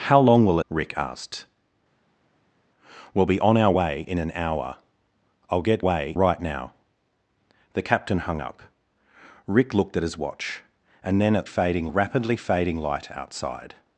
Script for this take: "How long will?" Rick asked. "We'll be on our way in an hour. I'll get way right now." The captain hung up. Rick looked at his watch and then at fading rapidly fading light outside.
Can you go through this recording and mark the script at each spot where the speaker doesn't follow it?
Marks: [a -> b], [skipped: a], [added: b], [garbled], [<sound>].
"How long will?" Rick asked. "We'll be on our way in an hour. I'll get way right now." The captain hung up. Rick looked at his watch and then at fading rapidly fading light outside.